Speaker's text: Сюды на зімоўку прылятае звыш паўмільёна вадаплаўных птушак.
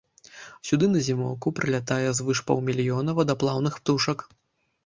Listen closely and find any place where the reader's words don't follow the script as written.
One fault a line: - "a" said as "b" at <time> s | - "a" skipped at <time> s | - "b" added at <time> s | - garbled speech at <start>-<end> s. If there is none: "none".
none